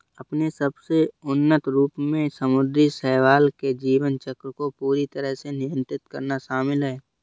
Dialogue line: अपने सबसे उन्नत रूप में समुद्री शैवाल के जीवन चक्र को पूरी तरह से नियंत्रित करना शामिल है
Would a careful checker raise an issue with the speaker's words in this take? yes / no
no